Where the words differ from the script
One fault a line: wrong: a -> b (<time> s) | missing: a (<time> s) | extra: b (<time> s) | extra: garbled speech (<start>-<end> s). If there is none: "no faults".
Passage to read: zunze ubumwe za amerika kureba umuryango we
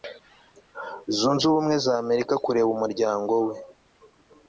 no faults